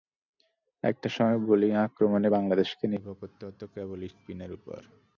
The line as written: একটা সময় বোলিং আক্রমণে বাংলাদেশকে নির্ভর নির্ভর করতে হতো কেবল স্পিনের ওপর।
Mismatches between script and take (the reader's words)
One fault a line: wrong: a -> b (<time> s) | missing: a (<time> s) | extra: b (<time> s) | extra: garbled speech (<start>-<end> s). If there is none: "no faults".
missing: নির্ভর (3.2 s)